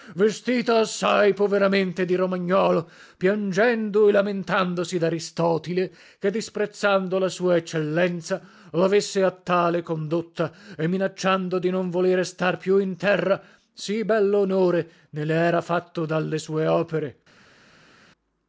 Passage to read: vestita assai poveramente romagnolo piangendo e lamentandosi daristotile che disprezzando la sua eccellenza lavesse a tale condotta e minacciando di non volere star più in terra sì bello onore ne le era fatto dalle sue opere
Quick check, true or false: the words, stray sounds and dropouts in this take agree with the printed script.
false